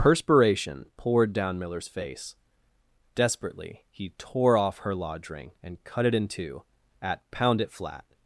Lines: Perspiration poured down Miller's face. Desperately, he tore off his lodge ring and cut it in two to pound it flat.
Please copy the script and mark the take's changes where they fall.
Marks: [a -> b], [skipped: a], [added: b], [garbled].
Perspiration poured down Miller's face. Desperately, he tore off [his -> her] lodge ring and cut it in two [to -> at] pound it flat.